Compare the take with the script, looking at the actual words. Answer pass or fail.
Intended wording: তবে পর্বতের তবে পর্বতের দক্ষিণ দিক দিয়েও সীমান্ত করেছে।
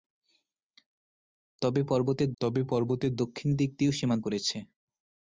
pass